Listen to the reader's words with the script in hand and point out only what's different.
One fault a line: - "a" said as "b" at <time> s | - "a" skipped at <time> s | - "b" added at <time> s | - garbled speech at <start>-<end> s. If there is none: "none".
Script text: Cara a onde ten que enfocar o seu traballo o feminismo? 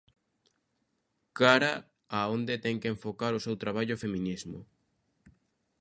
none